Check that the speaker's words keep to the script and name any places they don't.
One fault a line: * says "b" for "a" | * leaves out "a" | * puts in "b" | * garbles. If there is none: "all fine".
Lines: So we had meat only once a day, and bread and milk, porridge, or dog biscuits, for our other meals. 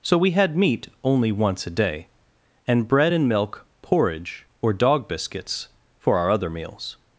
all fine